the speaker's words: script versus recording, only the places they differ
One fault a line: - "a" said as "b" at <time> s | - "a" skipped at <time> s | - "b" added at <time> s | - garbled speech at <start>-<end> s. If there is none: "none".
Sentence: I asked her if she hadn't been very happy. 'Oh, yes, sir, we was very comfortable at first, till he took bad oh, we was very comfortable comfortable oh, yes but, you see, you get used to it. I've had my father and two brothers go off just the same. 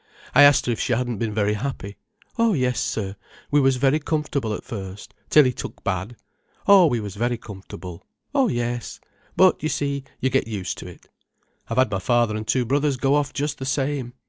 - "comfortable" skipped at 8.1 s